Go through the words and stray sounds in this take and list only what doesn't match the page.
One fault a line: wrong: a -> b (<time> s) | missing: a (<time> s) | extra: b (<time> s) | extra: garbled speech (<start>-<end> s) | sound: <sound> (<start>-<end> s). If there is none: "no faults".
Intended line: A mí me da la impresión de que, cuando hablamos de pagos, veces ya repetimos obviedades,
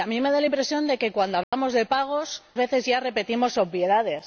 sound: dropout (1.4-1.5 s)